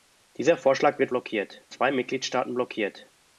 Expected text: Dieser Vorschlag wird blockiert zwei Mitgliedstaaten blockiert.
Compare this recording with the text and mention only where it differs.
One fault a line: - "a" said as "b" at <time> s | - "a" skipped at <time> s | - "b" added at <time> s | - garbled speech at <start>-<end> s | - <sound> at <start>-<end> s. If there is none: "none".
none